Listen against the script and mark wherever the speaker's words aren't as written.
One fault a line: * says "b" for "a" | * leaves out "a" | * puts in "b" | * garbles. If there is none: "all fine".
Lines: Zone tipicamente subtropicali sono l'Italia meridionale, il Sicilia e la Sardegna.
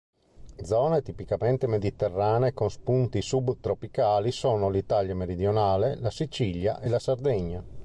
* puts in "mediterranee con spunti"
* says "la" for "il"